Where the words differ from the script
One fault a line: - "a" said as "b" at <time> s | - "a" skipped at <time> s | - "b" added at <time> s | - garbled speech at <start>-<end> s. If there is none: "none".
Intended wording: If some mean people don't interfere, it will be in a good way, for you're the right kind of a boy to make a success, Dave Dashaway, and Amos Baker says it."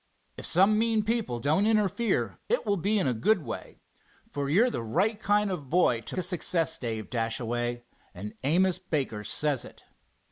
- "make" skipped at 6.2 s